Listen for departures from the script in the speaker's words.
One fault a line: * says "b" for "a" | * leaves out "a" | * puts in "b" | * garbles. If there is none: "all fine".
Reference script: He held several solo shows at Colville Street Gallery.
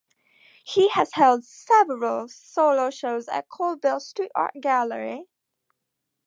* puts in "has"
* puts in "Art"